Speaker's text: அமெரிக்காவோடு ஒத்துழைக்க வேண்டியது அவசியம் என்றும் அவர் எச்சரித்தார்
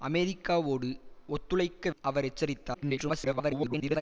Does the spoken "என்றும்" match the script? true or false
false